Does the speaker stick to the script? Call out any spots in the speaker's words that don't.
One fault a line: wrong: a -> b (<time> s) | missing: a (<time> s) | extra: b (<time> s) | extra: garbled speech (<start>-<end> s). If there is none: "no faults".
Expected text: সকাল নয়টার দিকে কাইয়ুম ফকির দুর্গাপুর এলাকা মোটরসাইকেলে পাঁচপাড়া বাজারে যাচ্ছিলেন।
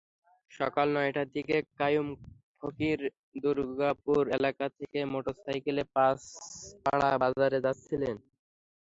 extra: থেকে (4.8 s)